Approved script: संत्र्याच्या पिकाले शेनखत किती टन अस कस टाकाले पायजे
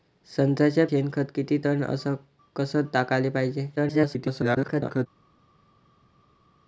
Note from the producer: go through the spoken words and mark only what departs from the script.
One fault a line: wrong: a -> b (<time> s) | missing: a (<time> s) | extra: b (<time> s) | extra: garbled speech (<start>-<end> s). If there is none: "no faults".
missing: पिकाले (0.9 s)
extra: garbled speech (3.8-5.1 s)